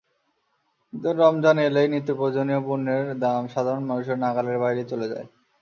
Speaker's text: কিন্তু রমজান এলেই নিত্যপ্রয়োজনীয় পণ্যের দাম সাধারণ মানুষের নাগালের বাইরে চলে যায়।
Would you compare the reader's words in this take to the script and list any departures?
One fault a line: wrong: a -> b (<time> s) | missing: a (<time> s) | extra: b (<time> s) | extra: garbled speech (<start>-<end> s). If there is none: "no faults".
no faults